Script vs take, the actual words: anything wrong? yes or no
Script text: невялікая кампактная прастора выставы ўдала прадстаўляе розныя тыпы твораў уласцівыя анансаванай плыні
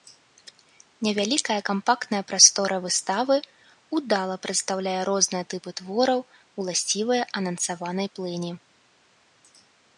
no